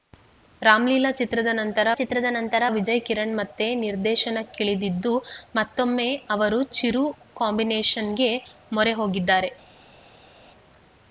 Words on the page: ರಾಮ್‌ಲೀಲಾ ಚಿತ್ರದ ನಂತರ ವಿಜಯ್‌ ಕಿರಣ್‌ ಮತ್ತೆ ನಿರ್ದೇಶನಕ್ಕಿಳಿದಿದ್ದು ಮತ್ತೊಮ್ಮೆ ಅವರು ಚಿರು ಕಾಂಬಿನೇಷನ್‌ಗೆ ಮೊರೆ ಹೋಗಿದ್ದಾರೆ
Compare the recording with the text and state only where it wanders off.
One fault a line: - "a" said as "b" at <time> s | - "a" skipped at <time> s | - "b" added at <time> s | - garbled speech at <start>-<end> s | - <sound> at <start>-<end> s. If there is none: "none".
- "ಚಿತ್ರದ ನಂತರ" added at 1.9 s